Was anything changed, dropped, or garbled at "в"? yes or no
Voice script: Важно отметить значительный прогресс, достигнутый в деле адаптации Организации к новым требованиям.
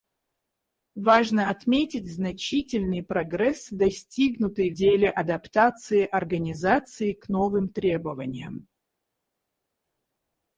yes